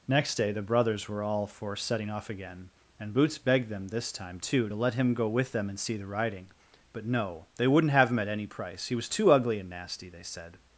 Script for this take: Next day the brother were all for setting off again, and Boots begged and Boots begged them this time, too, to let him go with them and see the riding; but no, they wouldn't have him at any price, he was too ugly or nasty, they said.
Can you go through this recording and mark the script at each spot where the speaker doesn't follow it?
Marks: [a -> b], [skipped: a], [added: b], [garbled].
Next day the [brother -> brothers] were all for setting off again, and Boots begged [skipped: and Boots begged] them this time, too, to let him go with them and see the riding; but no, they wouldn't have him at any price, he was too ugly [or -> and] nasty, they said.